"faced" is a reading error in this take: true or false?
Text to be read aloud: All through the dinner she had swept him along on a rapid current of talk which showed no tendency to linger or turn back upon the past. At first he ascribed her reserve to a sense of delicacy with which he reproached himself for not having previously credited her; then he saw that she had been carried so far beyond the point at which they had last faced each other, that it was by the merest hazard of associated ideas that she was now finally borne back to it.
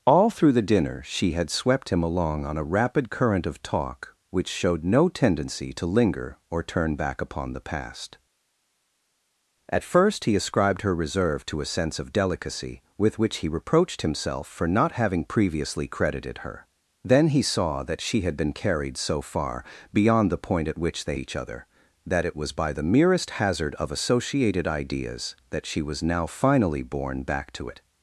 true